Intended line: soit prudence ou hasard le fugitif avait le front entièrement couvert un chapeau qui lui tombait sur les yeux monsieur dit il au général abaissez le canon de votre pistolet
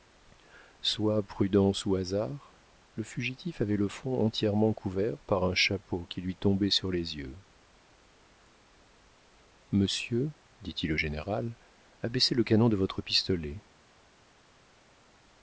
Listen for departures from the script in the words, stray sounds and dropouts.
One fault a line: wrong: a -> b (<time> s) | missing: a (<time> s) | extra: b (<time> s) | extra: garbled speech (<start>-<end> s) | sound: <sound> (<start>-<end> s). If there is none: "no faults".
extra: par (5.2 s)